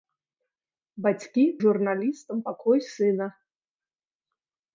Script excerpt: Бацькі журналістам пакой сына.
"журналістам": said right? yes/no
yes